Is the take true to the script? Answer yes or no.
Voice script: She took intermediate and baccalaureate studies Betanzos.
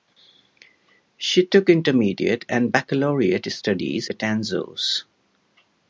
yes